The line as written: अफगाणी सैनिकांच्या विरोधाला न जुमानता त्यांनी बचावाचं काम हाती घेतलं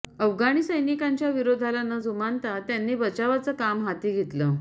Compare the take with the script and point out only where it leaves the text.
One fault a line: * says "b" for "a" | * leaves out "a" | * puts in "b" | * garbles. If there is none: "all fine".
all fine